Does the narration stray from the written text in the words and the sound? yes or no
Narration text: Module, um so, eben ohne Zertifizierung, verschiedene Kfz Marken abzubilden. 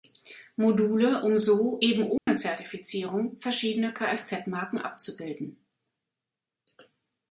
yes